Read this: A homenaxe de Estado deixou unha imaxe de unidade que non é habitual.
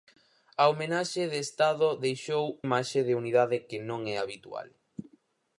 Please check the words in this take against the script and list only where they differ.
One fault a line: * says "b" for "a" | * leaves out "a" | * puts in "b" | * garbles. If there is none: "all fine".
* leaves out "unha"